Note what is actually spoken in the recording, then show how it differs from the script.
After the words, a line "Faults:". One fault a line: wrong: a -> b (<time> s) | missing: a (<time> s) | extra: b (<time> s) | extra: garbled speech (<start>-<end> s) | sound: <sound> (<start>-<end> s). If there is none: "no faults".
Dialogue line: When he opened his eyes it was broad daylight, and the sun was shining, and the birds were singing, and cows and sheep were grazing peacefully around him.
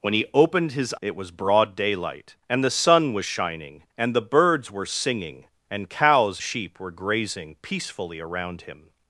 When he opened his it was broad daylight, and the sun was shining, and the birds were singing, and cows sheep were grazing peacefully around him.
Faults:
missing: eyes (0.9 s)
missing: and (6.4 s)